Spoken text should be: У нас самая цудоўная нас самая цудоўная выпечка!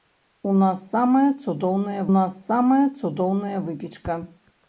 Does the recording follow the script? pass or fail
pass